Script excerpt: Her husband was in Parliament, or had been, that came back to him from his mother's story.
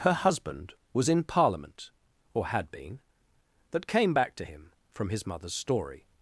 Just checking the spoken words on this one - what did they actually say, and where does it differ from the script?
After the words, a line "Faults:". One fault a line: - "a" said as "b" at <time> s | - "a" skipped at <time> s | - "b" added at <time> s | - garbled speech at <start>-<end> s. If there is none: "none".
Her husband was in Parliament, or had been, that came back to him from his mother's story.
Faults:
none